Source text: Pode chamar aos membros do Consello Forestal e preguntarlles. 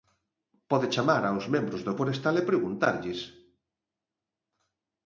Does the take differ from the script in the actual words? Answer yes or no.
yes